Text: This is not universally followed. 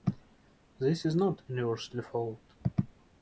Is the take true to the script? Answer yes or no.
yes